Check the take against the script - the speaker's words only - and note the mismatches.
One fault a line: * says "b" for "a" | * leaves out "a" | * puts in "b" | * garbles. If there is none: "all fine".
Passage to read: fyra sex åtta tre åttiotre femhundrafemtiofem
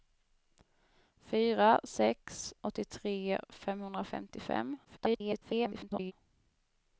* leaves out "åtta tre"
* garbles